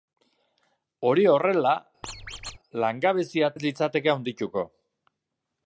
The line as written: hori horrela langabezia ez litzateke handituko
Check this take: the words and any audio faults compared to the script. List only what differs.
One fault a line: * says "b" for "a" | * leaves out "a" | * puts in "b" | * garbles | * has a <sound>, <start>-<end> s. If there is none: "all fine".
* has a squeak, 2.0-2.6 s